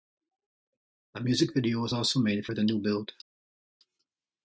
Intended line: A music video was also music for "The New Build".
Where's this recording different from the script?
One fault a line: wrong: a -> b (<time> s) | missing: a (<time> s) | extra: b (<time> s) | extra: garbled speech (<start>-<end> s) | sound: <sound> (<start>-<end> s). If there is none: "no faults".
wrong: music -> made (2.2 s)